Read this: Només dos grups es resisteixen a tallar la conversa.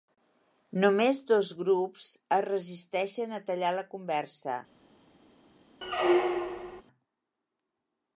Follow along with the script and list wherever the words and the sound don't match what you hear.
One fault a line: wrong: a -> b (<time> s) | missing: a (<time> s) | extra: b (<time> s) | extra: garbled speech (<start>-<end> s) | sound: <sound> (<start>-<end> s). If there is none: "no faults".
sound: squeak (5.8-6.8 s)